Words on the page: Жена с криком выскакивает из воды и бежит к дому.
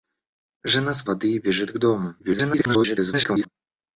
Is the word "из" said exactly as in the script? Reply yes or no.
no